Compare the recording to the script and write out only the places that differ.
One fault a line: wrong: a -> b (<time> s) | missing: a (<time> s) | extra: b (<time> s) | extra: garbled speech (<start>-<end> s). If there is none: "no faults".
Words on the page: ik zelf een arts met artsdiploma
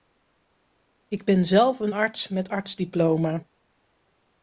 extra: ben (1.2 s)